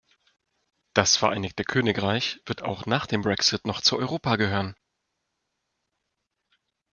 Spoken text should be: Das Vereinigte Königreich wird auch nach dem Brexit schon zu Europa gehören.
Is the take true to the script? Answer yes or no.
no